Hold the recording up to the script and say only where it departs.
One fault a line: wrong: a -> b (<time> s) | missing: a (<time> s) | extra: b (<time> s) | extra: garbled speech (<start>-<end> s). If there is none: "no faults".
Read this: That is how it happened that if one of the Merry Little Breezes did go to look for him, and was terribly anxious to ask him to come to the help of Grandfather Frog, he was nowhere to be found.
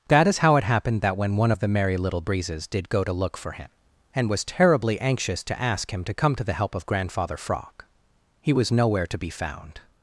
wrong: if -> when (1.2 s)